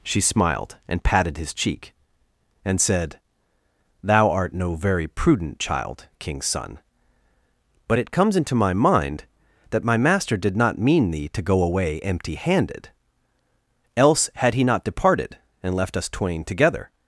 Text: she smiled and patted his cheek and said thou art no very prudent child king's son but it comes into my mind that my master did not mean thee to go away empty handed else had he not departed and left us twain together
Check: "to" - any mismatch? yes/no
no